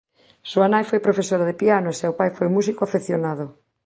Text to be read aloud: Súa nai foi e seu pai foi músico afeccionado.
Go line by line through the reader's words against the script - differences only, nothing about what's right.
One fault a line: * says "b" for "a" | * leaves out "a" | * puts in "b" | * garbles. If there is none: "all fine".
* puts in "profesora de piano"